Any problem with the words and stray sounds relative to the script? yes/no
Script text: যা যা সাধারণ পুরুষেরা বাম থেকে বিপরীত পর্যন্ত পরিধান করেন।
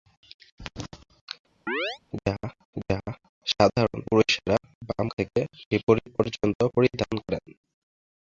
yes